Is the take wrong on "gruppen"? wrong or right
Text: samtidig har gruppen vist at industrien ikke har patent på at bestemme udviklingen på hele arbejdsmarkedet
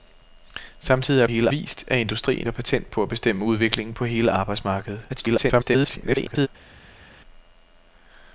wrong